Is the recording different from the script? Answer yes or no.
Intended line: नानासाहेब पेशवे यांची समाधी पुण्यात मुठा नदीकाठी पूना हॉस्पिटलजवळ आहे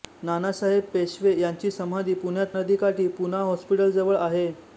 yes